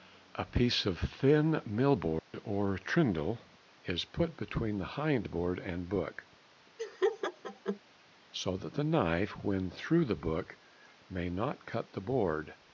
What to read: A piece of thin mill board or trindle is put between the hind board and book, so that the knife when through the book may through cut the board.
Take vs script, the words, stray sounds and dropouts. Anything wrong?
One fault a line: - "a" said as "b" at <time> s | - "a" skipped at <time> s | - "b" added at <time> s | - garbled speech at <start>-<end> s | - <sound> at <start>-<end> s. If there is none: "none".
- dropout at 2.2-2.3 s
- laugh at 6.8-7.8 s
- "through" said as "not" at 11.3 s